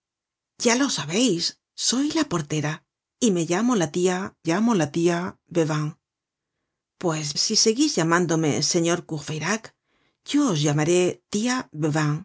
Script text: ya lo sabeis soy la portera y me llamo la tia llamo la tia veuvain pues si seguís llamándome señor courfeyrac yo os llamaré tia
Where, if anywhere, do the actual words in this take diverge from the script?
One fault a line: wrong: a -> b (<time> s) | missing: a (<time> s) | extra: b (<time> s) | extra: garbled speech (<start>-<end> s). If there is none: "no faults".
no faults